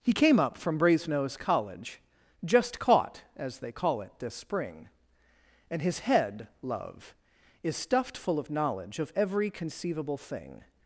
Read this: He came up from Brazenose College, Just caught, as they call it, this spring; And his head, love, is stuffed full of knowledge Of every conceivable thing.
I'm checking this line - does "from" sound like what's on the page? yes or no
yes